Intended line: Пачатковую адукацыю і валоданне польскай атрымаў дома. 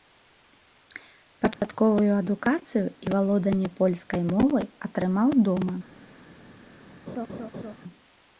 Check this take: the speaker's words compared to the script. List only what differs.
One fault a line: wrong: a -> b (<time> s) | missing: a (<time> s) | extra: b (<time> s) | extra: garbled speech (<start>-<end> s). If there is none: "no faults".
extra: мовай (4.3 s)